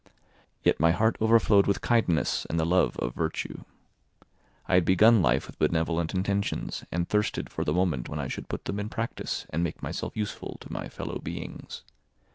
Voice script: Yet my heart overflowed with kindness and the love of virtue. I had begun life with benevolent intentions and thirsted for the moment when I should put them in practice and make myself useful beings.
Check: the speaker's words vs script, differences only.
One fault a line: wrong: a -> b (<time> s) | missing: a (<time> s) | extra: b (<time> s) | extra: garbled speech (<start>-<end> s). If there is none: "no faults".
extra: to my fellow (10.6 s)